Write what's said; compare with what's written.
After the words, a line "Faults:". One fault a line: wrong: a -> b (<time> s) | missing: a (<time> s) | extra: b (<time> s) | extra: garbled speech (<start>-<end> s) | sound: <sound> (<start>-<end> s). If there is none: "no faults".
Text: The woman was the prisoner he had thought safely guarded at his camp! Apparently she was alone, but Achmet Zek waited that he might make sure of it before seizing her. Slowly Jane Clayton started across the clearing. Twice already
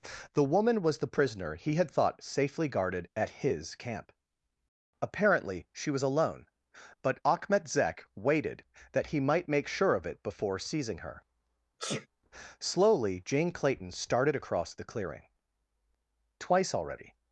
The woman was the prisoner he had thought safely guarded at his camp! Apparently she was alone, but Achmet Zek waited that he might make sure of it before seizing her. Slowly Jane Clayton started across the clearing. Twice already
Faults:
sound: sneeze (11.8-12.1 s)